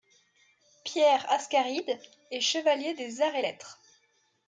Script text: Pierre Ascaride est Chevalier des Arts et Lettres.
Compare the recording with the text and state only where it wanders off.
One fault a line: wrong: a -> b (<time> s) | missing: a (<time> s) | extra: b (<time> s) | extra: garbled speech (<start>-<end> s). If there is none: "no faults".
no faults